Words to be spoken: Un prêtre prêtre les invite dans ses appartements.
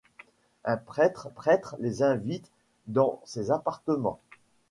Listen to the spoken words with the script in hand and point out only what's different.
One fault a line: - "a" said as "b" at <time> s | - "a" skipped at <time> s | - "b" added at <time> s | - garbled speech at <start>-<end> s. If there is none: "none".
none